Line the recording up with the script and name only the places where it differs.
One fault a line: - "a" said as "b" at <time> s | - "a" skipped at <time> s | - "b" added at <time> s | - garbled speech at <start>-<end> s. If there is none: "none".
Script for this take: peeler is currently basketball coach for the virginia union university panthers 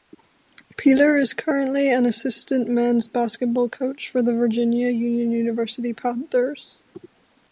- "an assistant men's" added at 1.9 s